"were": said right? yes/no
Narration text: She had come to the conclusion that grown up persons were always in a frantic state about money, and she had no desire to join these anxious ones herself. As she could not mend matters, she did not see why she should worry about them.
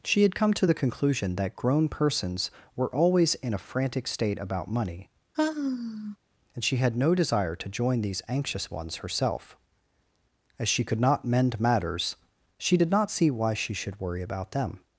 yes